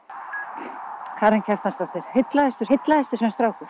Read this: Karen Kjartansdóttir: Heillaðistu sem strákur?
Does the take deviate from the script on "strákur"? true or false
false